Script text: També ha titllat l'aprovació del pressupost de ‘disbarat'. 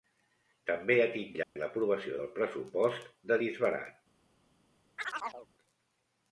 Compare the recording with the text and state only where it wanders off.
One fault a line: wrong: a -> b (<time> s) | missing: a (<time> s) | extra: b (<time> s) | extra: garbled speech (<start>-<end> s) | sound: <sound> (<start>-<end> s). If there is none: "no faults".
sound: dropout (1.4-1.6 s)
sound: chirp (5.0-5.5 s)